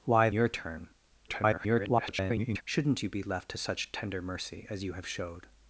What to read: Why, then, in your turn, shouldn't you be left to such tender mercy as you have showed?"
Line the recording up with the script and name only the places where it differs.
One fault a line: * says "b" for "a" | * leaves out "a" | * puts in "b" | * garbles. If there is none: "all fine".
* leaves out "then in"
* garbles